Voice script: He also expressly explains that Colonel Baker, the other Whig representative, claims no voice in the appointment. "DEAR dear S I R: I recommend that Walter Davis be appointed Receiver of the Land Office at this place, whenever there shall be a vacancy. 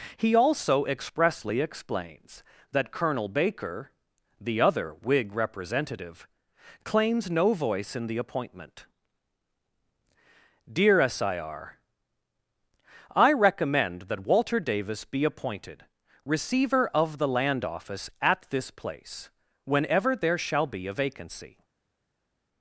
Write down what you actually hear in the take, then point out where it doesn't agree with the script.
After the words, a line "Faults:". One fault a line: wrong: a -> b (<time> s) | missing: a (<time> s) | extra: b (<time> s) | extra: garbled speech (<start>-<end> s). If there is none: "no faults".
He also expressly explains that Colonel Baker, the other Whig representative, claims no voice in the appointment. "DEAR S I R: I recommend that Walter Davis be appointed Receiver of the Land Office at this place, whenever there shall be a vacancy.
Faults:
missing: dear (11.0 s)